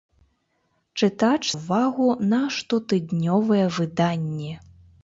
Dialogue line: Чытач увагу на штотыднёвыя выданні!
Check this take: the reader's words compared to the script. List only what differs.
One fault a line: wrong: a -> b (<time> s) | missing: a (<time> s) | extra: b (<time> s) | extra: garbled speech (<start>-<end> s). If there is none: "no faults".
no faults